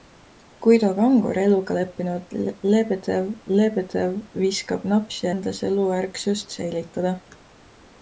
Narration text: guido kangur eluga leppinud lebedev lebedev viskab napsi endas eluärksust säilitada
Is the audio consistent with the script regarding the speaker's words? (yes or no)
yes